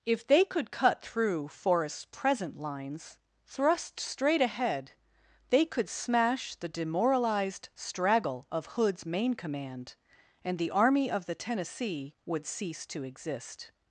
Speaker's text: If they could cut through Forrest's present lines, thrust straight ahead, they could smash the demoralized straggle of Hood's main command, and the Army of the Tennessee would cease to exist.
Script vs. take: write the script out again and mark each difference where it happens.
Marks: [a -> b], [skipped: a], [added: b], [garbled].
If they could cut through Forrest's present lines, thrust straight ahead, they could smash the demoralized straggle of Hood's main command, and the Army of the Tennessee would cease to exist.